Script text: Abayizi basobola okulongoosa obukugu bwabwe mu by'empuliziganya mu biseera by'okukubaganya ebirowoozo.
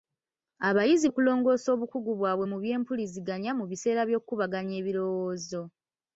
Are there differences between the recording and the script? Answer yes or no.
yes